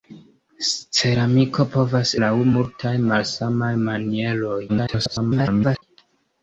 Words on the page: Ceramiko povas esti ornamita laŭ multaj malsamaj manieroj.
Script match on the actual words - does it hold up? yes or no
no